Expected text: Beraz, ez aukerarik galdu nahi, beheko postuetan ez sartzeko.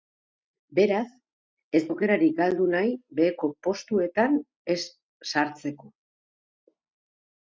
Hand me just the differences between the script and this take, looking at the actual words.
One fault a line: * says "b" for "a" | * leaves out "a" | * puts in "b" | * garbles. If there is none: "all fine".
all fine